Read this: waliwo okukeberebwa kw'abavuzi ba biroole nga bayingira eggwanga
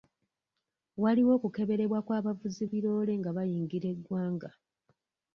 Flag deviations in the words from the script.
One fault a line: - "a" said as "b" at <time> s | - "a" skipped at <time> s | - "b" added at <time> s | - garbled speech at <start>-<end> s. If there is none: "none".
- "ba" skipped at 2.6 s